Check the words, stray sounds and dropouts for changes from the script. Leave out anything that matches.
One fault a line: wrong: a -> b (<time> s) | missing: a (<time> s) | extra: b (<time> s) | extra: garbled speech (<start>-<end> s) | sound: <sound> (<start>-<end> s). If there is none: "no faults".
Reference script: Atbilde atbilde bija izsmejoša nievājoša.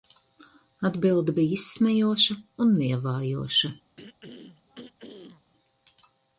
missing: atbilde (1.4 s)
extra: un (2.6 s)
sound: throat clearing (4.0-5.5 s)